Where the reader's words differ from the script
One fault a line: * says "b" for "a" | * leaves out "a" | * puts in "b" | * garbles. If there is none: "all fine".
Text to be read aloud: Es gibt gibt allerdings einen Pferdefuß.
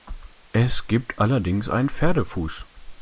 * leaves out "gibt"